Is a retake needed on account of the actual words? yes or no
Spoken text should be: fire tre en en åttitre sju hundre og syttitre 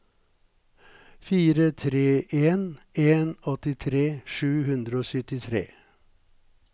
no